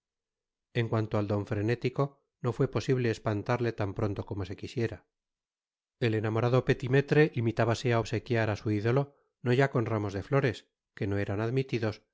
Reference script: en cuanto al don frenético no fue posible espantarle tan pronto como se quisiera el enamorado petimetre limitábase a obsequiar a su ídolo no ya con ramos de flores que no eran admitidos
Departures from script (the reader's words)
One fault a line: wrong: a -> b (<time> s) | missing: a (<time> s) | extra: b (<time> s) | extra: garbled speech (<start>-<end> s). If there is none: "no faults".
no faults